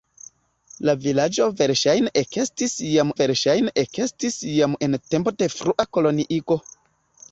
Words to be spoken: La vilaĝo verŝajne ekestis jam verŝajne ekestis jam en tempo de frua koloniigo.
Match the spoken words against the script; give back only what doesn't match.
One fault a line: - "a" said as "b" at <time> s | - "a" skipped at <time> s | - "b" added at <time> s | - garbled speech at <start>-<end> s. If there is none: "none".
none